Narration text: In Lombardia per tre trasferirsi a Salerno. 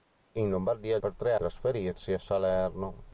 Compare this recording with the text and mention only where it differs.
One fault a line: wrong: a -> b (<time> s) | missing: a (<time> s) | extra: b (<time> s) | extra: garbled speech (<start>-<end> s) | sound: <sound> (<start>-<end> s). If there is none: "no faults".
no faults